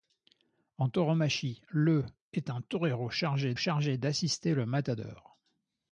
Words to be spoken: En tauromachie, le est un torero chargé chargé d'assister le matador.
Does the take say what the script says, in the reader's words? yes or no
yes